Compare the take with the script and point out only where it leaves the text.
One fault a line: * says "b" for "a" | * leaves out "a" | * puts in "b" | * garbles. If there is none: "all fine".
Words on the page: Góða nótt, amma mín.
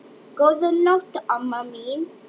all fine